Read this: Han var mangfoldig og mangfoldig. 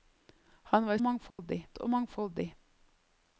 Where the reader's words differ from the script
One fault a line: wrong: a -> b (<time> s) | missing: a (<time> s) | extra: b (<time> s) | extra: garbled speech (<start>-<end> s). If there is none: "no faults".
no faults